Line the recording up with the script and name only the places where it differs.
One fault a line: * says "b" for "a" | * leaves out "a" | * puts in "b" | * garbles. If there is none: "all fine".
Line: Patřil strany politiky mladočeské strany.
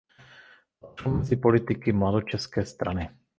* says "mezi" for "strany"